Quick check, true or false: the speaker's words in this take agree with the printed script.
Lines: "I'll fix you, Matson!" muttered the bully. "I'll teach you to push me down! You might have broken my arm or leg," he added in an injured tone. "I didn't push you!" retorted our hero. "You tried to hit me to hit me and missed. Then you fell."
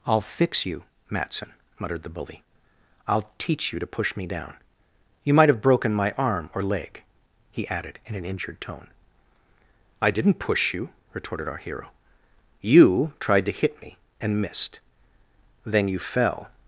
false